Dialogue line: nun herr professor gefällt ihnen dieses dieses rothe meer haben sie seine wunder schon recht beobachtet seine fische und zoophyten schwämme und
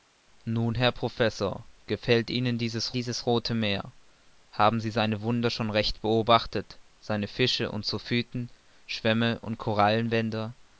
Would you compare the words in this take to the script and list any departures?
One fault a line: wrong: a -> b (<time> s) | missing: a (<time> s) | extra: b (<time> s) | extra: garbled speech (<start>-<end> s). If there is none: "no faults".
no faults